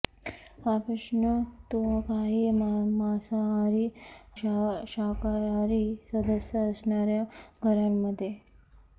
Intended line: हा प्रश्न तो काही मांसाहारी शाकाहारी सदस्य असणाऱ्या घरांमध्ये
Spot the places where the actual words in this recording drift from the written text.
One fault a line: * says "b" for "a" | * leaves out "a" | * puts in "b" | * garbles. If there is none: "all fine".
all fine